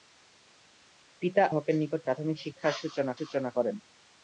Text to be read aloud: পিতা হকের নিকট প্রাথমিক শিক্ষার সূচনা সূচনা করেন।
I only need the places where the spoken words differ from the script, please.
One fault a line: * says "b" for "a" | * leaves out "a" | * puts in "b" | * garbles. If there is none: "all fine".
all fine